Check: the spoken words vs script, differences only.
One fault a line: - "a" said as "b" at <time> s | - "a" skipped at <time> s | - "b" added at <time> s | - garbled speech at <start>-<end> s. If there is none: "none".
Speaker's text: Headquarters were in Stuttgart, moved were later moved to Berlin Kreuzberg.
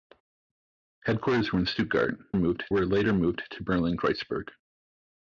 none